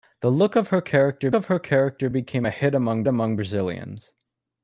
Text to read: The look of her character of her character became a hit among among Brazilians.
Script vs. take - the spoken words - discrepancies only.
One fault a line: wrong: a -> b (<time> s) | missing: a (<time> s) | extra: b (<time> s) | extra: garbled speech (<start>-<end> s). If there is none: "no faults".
no faults